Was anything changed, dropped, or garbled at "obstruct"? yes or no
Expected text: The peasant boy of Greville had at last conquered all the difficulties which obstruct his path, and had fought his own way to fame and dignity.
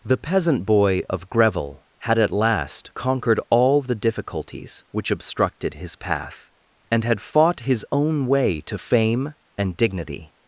yes